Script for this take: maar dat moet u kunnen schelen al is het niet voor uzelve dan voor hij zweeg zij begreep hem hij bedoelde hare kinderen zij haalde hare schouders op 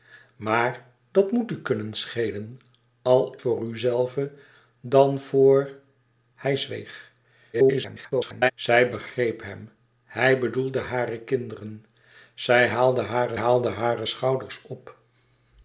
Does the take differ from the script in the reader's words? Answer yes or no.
yes